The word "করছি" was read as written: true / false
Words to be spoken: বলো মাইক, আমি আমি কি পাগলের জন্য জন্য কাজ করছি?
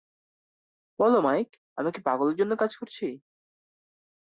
true